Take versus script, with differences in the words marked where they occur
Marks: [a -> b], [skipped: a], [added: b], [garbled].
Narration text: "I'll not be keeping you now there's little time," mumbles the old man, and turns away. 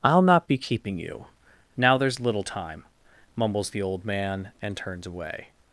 "I'll not be keeping you now there's little time," mumbles the old man, and turns away.